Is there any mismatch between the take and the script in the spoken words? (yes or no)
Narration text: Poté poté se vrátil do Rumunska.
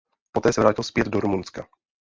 yes